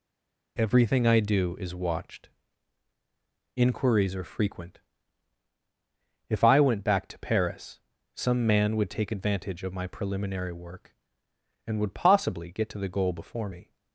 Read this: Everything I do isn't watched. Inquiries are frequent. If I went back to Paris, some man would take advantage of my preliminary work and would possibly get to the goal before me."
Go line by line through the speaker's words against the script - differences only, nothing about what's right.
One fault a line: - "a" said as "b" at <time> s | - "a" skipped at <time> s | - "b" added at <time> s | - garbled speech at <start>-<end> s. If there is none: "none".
- "isn't" said as "is" at 1.6 s